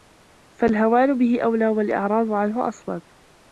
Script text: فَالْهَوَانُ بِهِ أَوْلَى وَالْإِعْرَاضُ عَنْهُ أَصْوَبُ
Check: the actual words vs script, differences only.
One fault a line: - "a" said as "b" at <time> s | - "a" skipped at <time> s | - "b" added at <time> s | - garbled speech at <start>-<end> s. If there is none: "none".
none